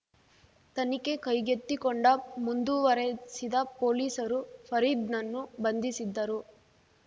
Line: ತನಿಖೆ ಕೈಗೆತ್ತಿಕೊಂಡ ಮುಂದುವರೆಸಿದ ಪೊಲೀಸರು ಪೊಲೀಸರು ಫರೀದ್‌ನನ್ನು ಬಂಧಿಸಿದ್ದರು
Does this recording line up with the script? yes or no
no